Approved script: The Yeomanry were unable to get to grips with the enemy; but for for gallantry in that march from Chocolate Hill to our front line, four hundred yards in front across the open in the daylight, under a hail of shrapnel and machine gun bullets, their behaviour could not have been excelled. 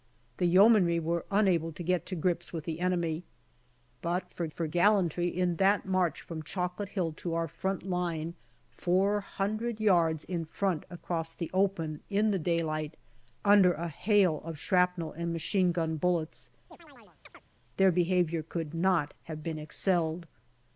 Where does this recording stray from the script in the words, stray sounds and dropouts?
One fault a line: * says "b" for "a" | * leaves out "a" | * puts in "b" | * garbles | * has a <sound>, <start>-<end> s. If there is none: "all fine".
* has a chirp, 16.7-17.4 s